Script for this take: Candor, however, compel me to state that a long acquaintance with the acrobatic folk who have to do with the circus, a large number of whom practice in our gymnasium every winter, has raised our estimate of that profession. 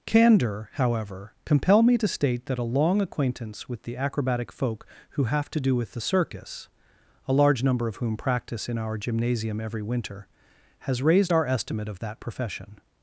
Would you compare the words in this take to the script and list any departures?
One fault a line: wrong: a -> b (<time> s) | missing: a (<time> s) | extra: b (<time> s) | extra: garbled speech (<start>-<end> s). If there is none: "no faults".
no faults